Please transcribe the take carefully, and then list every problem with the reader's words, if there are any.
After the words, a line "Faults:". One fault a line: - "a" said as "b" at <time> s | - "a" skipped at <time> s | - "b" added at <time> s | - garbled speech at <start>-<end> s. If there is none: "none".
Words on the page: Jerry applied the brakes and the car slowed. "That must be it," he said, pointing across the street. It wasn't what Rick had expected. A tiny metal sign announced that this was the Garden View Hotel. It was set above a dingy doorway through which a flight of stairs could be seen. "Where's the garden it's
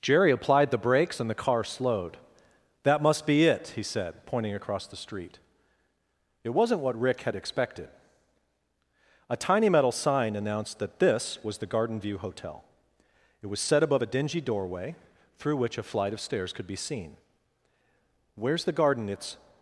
Jerry applied the brakes and the car slowed. "That must be it," he said, pointing across the street. It wasn't what Rick had expected. A tiny metal sign announced that this was the Garden View Hotel. It was set above a dingy doorway through which a flight of stairs could be seen. "Where's the garden it's
Faults:
none